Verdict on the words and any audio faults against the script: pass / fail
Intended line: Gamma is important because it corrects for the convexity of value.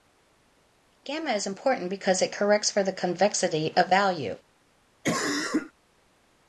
fail